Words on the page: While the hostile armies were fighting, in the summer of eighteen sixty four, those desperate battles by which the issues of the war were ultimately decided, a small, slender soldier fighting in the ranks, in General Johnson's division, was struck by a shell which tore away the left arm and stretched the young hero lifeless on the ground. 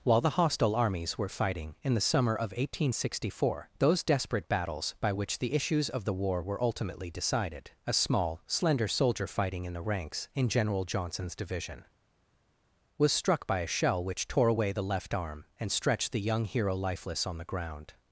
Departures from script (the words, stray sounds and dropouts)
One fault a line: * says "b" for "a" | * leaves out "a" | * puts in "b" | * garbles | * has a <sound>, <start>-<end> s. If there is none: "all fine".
all fine